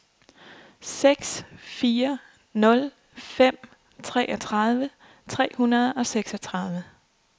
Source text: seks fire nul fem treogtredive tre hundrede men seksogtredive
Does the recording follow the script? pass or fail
fail